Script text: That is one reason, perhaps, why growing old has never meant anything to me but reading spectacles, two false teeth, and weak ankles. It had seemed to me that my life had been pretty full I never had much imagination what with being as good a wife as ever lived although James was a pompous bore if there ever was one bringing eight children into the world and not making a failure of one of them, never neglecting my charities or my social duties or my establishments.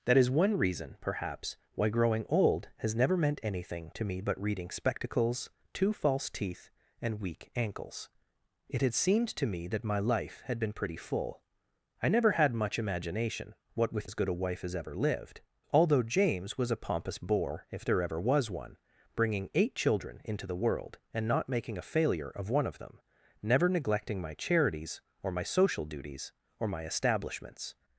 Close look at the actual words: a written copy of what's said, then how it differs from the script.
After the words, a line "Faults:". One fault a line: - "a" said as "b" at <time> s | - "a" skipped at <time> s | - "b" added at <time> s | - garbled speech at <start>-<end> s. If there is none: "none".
That is one reason, perhaps, why growing old has never meant anything to me but reading spectacles, two false teeth, and weak ankles. It had seemed to me that my life had been pretty full I never had much imagination what with as good a wife as ever lived although James was a pompous bore if there ever was one bringing eight children into the world and not making a failure of one of them, never neglecting my charities or my social duties or my establishments.
Faults:
- "being" skipped at 14.1 s